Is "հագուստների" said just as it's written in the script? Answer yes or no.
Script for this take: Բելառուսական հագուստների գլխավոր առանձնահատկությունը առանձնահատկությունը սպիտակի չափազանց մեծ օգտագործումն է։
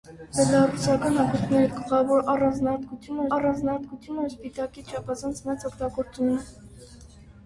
yes